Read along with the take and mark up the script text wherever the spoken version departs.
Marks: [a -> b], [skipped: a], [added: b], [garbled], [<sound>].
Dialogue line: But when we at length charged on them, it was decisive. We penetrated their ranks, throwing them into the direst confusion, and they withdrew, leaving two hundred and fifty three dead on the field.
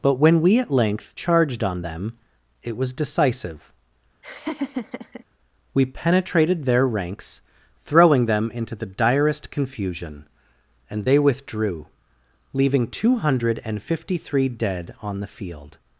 But when we at length charged on them, it was decisive. [laugh] We penetrated their ranks, throwing them into the direst confusion, and they withdrew, leaving two hundred and fifty three dead on the field.